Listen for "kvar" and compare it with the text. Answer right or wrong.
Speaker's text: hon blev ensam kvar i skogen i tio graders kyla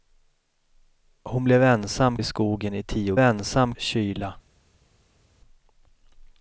wrong